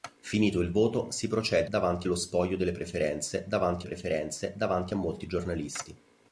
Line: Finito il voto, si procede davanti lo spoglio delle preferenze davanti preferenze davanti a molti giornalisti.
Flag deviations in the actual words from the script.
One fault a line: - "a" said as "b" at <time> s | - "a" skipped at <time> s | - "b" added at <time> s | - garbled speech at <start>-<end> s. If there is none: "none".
none